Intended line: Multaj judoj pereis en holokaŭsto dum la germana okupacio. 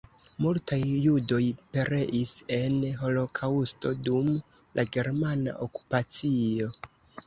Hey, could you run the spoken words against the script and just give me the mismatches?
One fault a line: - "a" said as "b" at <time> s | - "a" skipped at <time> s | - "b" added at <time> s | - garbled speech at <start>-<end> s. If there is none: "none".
none